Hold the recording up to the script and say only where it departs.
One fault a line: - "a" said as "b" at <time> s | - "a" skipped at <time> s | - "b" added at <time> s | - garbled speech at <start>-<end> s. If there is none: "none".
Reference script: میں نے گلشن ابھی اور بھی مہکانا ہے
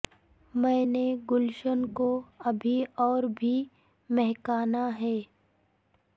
- "کو" added at 1.9 s